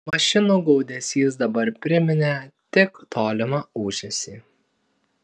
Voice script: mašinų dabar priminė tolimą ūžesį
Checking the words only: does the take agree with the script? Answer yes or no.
no